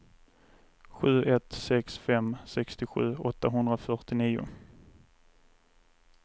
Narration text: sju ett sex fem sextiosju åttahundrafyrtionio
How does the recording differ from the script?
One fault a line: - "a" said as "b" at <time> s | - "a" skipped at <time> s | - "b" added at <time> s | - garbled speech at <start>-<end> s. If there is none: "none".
none